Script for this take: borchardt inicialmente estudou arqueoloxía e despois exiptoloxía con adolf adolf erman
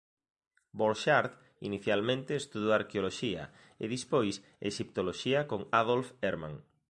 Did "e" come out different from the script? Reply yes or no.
no